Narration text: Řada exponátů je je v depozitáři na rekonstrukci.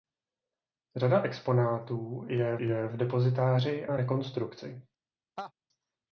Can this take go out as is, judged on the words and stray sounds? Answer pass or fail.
fail